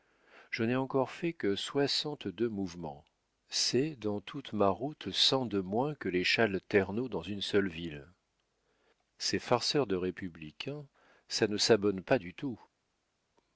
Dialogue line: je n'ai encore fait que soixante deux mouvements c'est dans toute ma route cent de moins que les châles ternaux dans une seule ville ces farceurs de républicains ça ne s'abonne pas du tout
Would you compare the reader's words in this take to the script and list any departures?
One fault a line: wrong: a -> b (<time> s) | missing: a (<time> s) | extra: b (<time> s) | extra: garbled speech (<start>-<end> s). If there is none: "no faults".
no faults